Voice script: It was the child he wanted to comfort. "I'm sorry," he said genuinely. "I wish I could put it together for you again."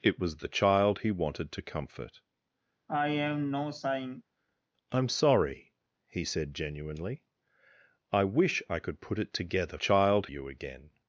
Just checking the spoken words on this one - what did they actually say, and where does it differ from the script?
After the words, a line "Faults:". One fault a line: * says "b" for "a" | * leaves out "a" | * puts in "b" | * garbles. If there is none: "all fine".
It was the child he wanted to comfort. "I'm sorry," he said genuinely. "I wish I could put it together child you again."
Faults:
* says "child" for "for"